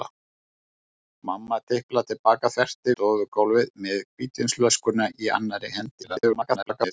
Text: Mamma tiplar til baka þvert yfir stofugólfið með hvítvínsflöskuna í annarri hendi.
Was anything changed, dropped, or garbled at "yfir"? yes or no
yes